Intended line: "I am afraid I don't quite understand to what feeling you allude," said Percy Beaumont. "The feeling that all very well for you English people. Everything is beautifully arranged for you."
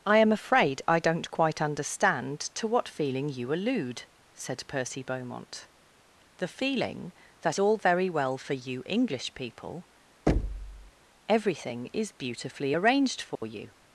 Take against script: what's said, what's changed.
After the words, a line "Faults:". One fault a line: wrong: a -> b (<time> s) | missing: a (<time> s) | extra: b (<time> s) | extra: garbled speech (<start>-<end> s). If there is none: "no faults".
"I am afraid I don't quite understand to what feeling you allude," said Percy Beaumont. "The feeling that all very well for you English people. Everything is beautifully arranged for you."
Faults:
no faults